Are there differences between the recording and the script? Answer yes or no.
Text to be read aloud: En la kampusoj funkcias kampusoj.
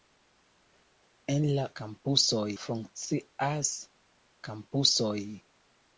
no